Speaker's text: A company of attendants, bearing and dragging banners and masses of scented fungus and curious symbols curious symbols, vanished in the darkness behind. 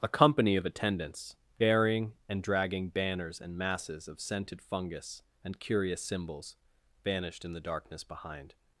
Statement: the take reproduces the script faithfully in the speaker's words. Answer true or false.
false